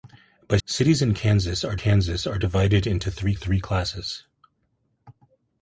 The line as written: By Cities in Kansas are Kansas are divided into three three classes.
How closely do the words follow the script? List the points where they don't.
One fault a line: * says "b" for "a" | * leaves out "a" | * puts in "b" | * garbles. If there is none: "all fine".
all fine